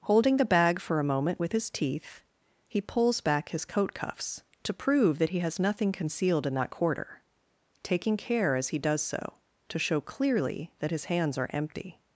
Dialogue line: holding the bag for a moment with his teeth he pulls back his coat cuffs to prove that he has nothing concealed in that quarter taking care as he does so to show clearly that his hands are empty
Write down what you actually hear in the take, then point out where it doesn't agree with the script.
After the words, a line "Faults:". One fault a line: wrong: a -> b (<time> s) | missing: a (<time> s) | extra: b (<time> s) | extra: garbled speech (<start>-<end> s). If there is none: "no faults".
holding the bag for a moment with his teeth he pulls back his coat cuffs to prove that he has nothing concealed in that quarter taking care as he does so to show clearly that his hands are empty
Faults:
no faults